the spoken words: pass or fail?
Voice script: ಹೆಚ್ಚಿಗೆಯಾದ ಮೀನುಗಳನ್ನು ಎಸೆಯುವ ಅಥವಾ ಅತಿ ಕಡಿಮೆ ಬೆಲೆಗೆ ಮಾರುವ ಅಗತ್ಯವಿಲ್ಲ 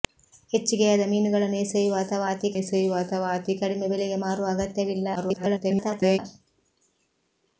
fail